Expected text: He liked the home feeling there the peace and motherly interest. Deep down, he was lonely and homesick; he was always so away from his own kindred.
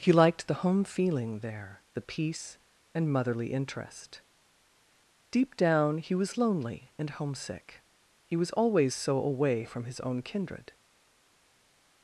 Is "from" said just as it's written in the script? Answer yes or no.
yes